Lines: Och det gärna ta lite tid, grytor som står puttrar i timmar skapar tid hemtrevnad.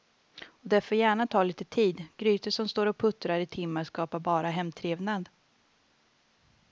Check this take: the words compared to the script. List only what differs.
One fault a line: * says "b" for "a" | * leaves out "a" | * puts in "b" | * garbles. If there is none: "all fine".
* puts in "får"
* puts in "och"
* says "bara" for "tid"